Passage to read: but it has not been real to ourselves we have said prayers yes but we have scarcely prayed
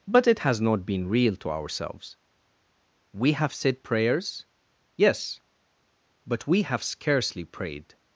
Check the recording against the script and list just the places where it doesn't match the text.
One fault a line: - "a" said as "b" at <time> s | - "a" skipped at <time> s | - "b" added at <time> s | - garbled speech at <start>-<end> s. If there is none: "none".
none